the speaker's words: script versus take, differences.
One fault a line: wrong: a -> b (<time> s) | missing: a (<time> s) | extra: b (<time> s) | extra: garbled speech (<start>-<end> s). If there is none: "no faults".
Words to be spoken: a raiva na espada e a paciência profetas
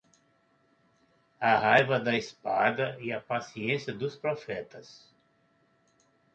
wrong: na -> da (2.0 s)
extra: dos (3.9 s)